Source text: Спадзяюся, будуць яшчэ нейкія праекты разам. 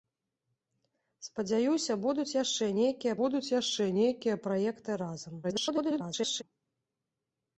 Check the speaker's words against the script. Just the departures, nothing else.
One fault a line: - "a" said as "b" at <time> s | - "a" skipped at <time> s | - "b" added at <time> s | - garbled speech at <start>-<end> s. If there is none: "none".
- "будуць яшчэ нейкія" added at 3.2 s
- garbled speech at 5.4-6.4 s